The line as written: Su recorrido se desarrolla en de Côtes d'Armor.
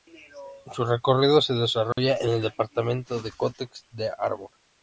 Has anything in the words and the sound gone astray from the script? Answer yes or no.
yes